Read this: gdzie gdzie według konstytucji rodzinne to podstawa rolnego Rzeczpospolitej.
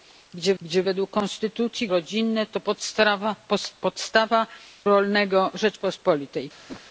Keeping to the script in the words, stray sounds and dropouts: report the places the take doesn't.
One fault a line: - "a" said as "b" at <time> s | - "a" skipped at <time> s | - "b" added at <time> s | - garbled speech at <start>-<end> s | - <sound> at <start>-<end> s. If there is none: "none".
- whoosh at 6.7-6.8 s